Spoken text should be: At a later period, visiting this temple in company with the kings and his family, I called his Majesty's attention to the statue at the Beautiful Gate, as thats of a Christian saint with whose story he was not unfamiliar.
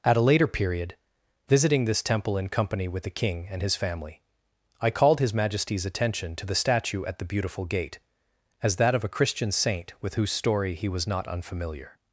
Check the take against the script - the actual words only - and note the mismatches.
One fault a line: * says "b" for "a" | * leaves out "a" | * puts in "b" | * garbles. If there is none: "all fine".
* says "king" for "kings"
* says "that" for "thats"